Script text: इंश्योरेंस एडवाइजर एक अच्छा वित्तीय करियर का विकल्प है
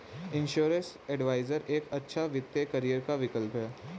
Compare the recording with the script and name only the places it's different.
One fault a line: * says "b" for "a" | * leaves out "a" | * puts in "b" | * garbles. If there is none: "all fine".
all fine